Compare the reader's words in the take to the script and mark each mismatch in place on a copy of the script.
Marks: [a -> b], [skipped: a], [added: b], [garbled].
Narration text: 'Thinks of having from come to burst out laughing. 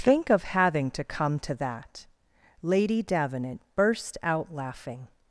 ['Thinks -> Think] of having [from -> to] come to [added: that Lady Davenant] burst out laughing.